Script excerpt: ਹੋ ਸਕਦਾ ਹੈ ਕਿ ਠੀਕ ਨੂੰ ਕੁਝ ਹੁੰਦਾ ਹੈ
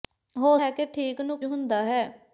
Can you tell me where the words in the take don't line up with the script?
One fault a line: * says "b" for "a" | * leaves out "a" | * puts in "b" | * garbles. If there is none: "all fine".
* leaves out "ਸਕਦਾ"
* leaves out "ਕੁਝ"